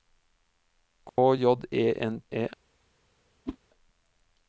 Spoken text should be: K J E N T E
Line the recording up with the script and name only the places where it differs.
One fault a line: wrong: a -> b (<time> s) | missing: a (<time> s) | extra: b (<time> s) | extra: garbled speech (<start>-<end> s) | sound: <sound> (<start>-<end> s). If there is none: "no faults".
sound: dropout (1.1-1.2 s)
missing: T (2.2 s)
sound: whoosh (3.5-3.6 s)